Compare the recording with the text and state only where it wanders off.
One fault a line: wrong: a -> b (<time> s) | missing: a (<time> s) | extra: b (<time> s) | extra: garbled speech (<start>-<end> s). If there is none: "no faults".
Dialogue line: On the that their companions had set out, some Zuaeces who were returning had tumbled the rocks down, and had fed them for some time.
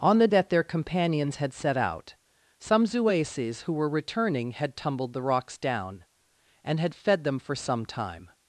no faults